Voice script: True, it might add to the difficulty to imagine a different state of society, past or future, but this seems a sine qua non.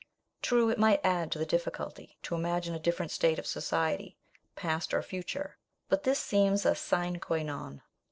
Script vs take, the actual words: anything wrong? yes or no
no